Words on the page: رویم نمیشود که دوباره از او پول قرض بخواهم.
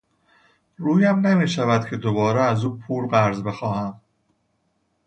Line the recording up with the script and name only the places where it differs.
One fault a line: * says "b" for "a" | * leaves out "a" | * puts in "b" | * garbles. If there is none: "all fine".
all fine